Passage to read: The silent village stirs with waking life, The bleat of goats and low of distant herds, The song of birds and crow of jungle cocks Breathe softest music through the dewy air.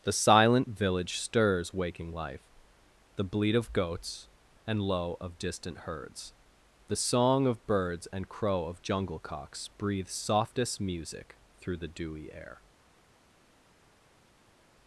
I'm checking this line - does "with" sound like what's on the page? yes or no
no